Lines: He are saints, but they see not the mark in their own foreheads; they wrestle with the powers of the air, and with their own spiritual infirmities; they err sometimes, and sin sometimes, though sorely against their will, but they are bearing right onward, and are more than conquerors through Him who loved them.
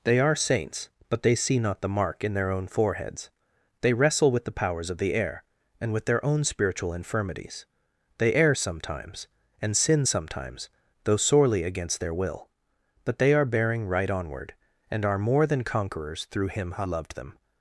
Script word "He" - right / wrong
wrong